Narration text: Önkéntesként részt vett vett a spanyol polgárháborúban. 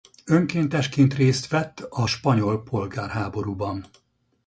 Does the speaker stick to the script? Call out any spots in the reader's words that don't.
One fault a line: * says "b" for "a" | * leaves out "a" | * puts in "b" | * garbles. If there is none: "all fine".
* leaves out "vett"